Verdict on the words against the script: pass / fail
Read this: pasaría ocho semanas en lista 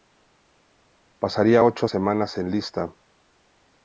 pass